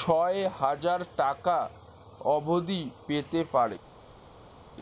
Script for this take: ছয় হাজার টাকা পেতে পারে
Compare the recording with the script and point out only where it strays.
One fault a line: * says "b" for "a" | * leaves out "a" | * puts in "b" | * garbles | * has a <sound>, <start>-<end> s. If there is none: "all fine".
* puts in "অবধি"